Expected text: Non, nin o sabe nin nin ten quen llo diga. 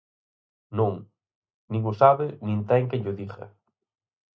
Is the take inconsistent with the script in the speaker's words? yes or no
yes